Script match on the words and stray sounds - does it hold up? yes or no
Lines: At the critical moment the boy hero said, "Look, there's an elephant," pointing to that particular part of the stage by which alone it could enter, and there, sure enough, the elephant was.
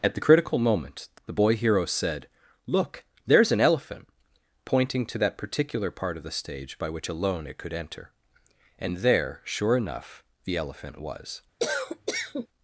no